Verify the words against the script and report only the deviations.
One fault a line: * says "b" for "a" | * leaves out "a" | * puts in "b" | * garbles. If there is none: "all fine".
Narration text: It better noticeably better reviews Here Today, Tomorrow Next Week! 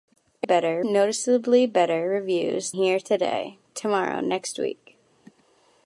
all fine